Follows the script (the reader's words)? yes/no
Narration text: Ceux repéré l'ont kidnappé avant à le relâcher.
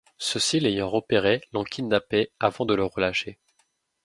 no